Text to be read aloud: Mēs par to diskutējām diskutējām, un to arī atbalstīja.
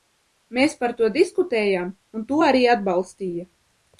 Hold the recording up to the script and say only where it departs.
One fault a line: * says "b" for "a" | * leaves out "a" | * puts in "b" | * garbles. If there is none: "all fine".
* leaves out "diskutējām"